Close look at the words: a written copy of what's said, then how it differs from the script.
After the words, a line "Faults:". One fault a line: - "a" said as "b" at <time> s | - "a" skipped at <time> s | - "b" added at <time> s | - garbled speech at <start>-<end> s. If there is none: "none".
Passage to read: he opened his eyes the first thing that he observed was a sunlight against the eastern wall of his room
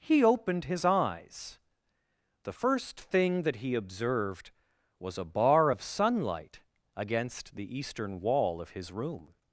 he opened his eyes the first thing that he observed was a bar of sunlight against the eastern wall of his room
Faults:
- "bar of" added at 5.2 s